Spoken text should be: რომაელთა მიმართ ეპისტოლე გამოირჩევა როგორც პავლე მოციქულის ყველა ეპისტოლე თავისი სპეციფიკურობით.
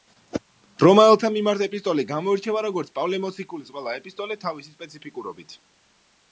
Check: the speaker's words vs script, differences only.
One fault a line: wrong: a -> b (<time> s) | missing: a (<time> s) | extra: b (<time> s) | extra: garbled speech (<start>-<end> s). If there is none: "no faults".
no faults